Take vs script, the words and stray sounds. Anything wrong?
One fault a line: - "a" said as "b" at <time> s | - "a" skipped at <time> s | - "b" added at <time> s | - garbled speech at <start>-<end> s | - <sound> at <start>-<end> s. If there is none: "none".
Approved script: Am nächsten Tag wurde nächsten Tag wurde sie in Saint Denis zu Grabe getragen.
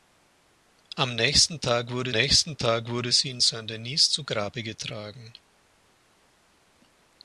none